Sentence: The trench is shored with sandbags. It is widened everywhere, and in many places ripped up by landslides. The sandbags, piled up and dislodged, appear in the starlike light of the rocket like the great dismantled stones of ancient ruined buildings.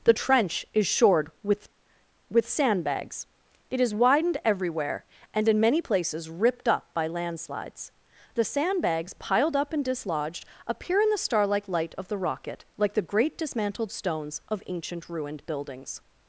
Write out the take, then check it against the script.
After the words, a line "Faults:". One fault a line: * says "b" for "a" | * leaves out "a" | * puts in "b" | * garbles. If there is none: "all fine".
The trench is shored with with sandbags. It is widened everywhere, and in many places ripped up by landslides. The sandbags, piled up and dislodged, appear in the starlike light of the rocket like the great dismantled stones of ancient ruined buildings.
Faults:
* puts in "with"